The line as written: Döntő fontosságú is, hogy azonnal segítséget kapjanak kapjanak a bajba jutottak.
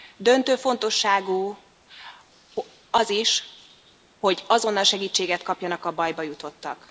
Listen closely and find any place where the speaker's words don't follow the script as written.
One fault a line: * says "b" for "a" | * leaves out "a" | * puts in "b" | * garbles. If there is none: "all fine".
* puts in "az"
* leaves out "kapjanak"